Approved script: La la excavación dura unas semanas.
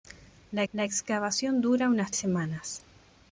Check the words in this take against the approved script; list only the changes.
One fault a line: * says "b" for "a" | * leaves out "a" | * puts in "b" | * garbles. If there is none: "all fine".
all fine